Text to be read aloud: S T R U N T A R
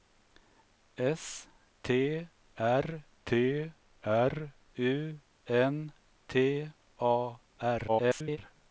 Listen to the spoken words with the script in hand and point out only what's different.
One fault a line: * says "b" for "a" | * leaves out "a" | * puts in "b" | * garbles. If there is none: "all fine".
* puts in "T R"
* garbles